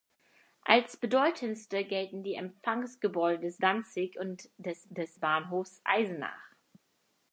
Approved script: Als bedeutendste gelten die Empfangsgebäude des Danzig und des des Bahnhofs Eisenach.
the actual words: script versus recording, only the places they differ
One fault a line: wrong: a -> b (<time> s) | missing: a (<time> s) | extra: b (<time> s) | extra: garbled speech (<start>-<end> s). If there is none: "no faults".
no faults